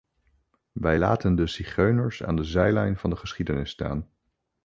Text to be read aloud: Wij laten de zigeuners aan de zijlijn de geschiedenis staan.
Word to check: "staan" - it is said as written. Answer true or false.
true